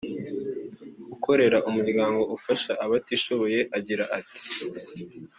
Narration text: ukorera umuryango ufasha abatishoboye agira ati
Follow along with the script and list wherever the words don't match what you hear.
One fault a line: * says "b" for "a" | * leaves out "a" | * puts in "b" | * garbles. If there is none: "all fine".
all fine